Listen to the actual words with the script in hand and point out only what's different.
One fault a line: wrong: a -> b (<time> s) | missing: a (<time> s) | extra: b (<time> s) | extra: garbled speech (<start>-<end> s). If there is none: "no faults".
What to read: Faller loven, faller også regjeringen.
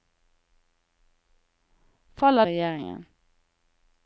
missing: loven faller også (2.5 s)